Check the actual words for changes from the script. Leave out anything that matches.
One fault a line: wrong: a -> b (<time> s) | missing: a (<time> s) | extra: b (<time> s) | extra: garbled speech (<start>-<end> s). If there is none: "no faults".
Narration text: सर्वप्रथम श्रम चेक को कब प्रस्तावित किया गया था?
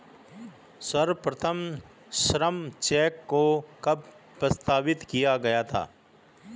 no faults